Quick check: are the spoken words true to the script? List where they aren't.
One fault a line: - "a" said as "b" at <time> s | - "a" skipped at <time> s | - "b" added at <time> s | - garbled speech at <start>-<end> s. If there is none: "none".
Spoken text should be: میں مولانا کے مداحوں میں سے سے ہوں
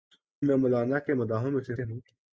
none